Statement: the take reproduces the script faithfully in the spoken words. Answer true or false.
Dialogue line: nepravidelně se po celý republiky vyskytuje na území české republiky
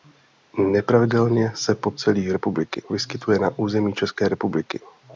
true